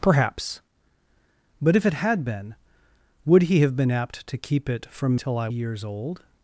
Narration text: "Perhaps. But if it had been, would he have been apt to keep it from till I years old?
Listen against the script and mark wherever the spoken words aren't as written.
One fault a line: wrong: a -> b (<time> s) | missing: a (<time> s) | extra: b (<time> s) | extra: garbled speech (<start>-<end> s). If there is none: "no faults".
no faults